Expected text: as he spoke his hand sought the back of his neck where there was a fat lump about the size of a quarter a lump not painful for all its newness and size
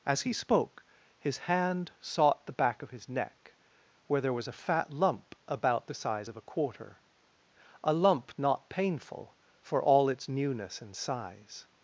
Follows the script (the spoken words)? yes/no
yes